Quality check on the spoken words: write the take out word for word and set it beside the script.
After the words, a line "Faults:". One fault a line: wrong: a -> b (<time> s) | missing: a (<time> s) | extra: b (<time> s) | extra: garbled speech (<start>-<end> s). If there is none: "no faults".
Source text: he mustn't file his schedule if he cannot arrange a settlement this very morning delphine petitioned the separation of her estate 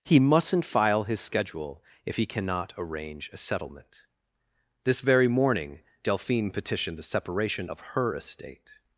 he mustn't file his schedule if he cannot arrange a settlement this very morning delphine petitioned the separation of her estate
Faults:
no faults